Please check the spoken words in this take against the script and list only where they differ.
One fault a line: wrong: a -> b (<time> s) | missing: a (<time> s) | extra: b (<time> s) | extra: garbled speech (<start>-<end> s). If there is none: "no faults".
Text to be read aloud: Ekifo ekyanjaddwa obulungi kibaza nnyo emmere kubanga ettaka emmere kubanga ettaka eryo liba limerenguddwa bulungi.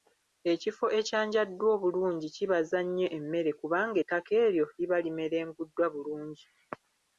missing: emmere kubanga ettaka (4.3 s)